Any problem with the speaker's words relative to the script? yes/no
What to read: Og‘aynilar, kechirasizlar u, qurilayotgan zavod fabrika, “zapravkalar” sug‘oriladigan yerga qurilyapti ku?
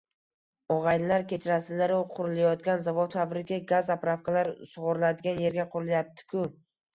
yes